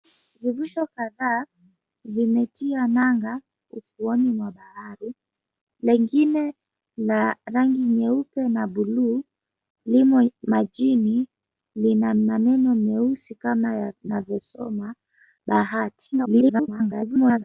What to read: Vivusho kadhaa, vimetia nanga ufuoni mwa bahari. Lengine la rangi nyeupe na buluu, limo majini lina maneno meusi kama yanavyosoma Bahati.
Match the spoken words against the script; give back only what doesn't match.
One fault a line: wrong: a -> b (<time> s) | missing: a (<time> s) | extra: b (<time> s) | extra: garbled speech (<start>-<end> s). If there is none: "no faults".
extra: garbled speech (16.1-17.4 s)